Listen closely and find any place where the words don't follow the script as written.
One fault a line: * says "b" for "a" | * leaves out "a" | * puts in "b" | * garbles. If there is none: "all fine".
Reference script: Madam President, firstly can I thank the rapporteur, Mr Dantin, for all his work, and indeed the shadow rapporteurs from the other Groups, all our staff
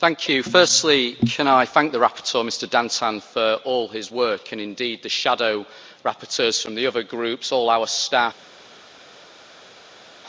all fine